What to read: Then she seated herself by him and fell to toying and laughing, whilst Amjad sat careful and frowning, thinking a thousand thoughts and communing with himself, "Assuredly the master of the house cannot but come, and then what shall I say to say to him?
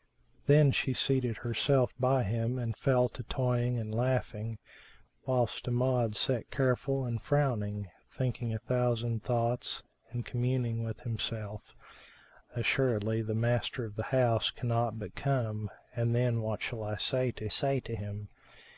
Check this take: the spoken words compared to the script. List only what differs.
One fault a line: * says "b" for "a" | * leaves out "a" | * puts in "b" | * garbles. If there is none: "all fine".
all fine